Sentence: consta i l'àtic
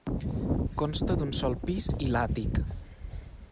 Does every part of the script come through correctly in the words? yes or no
no